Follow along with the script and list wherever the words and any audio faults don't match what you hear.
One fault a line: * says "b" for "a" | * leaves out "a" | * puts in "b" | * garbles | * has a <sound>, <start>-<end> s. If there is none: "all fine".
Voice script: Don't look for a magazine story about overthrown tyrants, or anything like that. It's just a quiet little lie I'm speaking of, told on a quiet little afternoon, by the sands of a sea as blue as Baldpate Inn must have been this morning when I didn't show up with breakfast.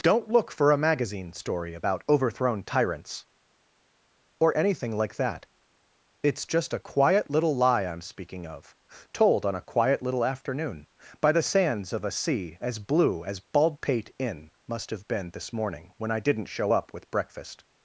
all fine